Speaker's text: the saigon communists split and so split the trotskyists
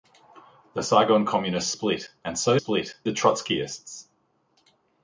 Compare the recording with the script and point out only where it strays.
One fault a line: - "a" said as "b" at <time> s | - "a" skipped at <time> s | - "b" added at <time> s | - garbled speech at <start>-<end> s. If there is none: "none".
none